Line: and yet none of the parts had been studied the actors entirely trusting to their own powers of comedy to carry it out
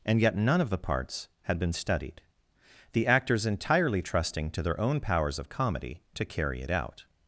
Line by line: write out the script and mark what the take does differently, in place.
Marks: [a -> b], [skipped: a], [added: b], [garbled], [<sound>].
and yet none of the parts had been studied the actors entirely trusting to their own powers of comedy to carry it out